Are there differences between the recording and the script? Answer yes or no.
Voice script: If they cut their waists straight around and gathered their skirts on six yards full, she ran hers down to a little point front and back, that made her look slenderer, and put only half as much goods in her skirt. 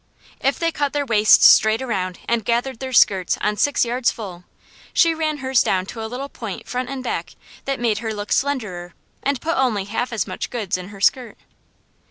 no